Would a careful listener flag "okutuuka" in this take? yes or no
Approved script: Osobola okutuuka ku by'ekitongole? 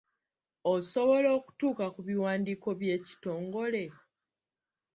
no